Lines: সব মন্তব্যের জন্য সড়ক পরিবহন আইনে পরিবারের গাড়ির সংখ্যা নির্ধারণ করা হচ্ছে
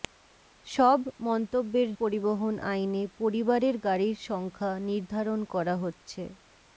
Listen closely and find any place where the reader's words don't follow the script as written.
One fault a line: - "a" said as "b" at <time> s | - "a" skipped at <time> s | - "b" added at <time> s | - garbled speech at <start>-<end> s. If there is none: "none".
- "জন্য সড়ক" skipped at 1.9 s